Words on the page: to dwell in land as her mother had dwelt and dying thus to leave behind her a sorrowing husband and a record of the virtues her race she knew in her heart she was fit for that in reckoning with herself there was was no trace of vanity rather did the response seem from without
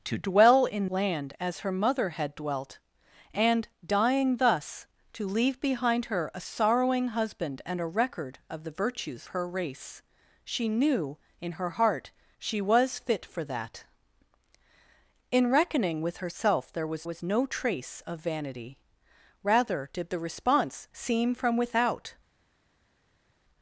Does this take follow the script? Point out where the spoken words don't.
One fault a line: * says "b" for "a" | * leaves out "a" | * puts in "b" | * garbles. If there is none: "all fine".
all fine